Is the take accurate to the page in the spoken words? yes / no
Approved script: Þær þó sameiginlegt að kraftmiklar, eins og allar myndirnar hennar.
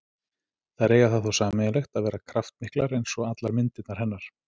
no